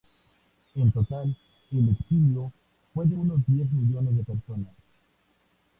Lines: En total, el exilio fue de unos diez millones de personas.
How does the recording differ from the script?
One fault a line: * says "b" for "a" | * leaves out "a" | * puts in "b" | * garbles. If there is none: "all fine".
all fine